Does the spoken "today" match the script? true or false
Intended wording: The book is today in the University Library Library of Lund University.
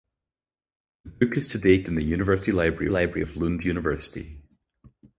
true